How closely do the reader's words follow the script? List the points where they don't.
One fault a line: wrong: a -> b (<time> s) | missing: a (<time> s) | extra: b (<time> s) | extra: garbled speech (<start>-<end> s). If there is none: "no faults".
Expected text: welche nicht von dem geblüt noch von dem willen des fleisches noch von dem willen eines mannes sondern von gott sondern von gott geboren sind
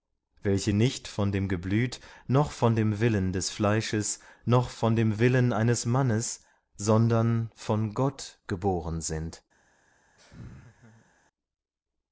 missing: sondern von gott (8.4 s)